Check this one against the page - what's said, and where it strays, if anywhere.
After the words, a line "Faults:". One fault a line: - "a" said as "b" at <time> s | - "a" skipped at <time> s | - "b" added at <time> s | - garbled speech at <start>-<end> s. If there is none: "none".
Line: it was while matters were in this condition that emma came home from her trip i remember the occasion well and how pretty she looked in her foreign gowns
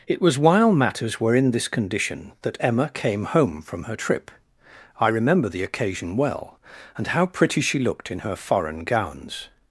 it was while matters were in this condition that emma came home from her trip i remember the occasion well and how pretty she looked in her foreign gowns
Faults:
none